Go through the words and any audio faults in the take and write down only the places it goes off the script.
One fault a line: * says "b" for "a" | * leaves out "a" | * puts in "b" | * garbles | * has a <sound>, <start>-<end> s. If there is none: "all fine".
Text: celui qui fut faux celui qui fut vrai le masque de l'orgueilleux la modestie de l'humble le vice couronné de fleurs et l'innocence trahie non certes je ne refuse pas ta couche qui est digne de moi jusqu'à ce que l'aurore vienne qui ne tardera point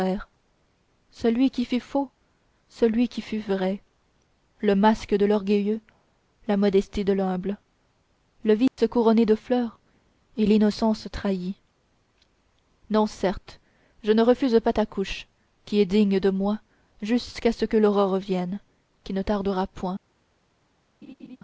* has a dropout, 8.7-8.8 s
* has a laugh, 21.0-21.4 s